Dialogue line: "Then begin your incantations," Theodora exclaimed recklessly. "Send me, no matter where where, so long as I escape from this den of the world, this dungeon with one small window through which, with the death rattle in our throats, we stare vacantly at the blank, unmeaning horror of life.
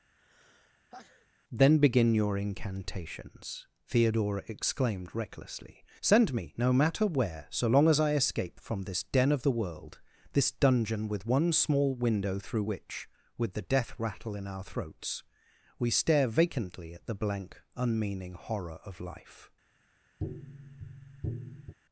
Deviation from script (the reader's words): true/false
true